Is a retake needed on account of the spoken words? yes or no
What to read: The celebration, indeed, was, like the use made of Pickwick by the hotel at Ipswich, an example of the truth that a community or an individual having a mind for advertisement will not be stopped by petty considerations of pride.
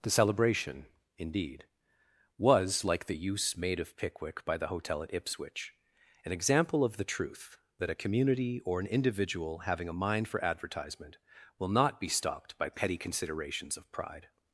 no